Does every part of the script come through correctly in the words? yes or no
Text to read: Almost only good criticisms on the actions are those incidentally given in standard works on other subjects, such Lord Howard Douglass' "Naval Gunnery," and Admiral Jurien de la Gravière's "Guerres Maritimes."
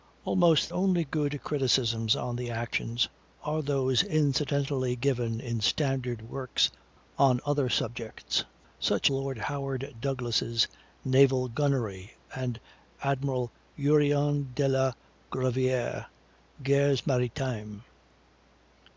yes